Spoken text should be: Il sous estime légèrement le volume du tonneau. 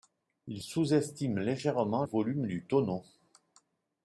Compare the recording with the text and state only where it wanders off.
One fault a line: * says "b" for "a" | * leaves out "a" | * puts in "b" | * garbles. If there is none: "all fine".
* leaves out "le"